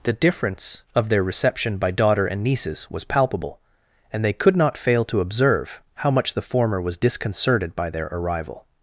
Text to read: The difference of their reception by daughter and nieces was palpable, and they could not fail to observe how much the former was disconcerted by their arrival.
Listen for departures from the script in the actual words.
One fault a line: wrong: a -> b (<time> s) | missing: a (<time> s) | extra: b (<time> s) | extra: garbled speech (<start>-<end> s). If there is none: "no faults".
no faults